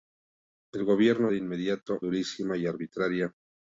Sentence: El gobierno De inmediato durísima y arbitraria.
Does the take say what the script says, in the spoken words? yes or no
yes